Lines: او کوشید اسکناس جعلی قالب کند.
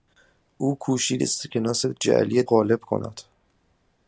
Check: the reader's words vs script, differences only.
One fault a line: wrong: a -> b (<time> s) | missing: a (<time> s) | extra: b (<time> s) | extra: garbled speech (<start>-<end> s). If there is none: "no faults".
no faults